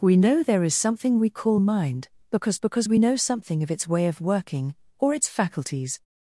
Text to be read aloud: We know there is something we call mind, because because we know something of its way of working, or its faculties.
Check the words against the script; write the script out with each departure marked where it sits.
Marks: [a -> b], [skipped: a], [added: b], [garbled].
We know there is something we call mind, because because we know something of its way of working, or its faculties.